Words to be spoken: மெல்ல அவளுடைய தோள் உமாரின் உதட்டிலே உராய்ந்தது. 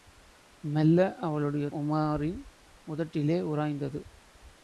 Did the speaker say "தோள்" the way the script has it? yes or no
no